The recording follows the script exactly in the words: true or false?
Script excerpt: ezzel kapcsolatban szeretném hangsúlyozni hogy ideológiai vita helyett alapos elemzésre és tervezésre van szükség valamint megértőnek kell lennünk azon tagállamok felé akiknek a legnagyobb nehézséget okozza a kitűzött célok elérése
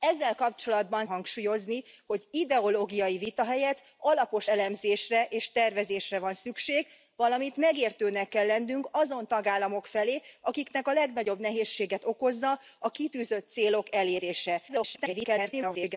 false